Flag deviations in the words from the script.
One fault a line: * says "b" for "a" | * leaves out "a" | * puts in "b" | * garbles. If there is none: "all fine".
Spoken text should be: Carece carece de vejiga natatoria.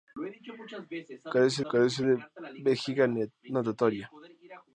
all fine